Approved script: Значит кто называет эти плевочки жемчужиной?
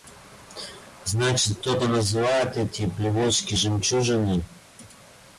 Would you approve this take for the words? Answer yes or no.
no